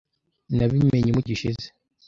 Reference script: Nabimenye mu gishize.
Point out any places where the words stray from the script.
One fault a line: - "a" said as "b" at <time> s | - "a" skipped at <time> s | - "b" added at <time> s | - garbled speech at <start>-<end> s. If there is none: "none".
none